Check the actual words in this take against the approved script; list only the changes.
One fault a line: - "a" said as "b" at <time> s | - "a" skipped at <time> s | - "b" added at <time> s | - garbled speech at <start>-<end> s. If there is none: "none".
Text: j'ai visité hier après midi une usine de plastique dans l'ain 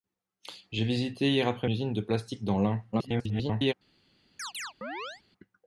- "midi une" skipped at 1.7 s
- garbled speech at 2.9-3.7 s